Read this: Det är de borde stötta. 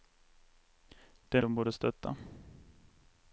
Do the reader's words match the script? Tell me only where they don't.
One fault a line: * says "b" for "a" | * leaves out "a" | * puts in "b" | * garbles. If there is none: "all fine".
all fine